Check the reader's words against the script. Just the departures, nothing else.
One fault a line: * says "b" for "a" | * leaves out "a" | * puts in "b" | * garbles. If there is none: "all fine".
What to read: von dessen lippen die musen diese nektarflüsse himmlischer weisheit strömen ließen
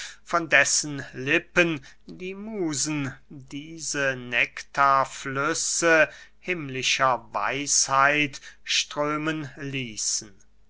all fine